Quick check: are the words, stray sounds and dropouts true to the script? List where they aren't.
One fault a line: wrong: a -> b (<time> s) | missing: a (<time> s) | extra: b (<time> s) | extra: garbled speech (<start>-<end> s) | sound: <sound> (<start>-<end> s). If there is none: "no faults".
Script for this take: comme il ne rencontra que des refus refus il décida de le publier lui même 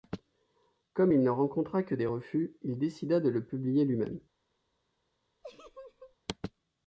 missing: refus (2.5 s)
sound: laugh (5.4-6.2 s)